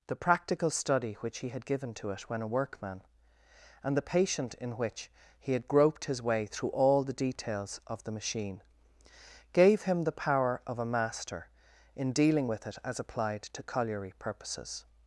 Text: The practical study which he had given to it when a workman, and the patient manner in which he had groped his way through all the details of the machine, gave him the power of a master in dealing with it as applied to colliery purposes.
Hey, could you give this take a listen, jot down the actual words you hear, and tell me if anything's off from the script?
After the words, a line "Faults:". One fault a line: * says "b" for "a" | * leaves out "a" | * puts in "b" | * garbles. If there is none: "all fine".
The practical study which he had given to it when a workman, and the patient in which he had groped his way through all the details of the machine, gave him the power of a master in dealing with it as applied to colliery purposes.
Faults:
* leaves out "manner"